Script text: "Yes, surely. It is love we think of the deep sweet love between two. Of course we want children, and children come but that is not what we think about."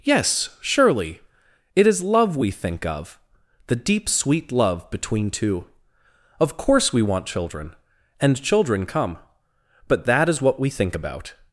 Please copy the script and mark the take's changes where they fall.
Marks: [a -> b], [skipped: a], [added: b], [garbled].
"Yes, surely. It is love we think of the deep sweet love between two. Of course we want children, and children come but that is [skipped: not] what we think about."